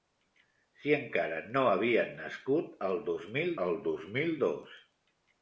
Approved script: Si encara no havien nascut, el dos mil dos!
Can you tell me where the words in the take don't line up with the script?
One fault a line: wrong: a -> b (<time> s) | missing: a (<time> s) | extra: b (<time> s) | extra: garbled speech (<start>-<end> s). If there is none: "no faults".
extra: el dos mil (3.6 s)